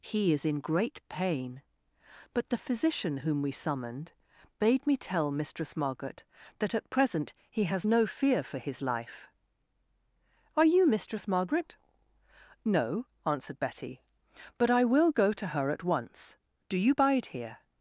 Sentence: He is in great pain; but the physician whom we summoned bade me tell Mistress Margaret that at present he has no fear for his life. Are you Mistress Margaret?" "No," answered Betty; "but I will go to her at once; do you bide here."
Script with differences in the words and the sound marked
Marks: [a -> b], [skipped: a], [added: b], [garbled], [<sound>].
He is in great pain; but the physician whom we summoned bade me tell Mistress Margaret that at present he has no fear for his life. Are you Mistress Margaret?" "No," answered Betty; "but I will go to her at once; do you bide here."